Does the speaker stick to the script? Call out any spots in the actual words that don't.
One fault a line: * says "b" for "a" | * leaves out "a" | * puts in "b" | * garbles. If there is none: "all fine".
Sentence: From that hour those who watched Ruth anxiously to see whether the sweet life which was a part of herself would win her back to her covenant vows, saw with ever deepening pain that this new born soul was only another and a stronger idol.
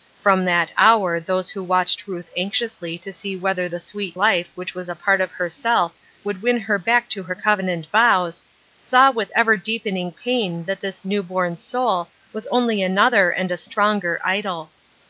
all fine